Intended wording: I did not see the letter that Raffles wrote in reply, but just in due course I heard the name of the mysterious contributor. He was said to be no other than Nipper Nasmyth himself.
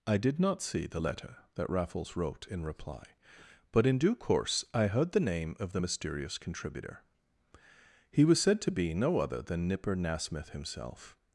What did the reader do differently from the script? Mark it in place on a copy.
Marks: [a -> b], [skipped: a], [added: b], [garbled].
I did not see the letter that Raffles wrote in reply, but [skipped: just] in due course I heard the name of the mysterious contributor. He was said to be no other than Nipper Nasmyth himself.